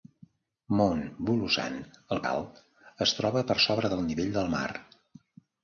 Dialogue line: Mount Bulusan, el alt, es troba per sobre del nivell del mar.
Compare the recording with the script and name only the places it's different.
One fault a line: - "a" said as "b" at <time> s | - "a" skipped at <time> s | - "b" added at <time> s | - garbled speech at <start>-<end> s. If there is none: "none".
none